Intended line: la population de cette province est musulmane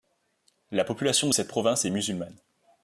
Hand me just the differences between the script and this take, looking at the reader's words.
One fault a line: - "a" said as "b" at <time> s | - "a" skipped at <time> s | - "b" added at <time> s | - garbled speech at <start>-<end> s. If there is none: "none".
none